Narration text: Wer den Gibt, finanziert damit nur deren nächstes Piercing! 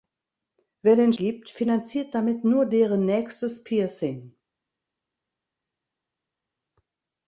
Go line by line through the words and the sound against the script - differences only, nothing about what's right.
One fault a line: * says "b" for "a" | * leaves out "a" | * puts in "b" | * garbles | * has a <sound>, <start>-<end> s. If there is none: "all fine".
all fine